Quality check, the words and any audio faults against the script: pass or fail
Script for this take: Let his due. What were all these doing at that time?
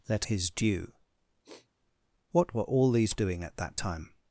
fail